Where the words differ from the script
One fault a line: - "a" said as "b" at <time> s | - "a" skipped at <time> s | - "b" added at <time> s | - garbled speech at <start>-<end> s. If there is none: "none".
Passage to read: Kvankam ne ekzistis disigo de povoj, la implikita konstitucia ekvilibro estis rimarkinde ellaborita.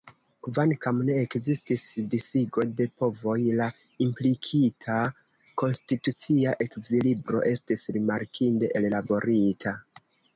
none